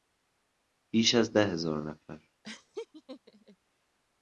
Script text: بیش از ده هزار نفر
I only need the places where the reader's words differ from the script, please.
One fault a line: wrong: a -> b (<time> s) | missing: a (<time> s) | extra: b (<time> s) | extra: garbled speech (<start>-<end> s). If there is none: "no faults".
no faults